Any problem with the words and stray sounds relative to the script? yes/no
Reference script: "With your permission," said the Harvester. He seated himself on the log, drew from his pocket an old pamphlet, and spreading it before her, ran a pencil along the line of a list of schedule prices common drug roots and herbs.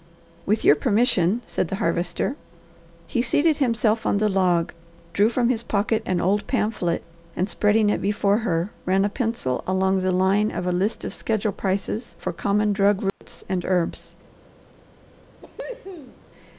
yes